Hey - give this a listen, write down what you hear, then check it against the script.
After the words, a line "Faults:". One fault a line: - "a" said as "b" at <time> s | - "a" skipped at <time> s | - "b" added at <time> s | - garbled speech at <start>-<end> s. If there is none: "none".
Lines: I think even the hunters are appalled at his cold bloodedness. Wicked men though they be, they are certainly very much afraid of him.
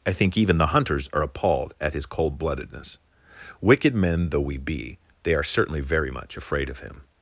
I think even the hunters are appalled at his cold bloodedness. Wicked men though we be, they are certainly very much afraid of him.
Faults:
- "they" said as "we" at 4.4 s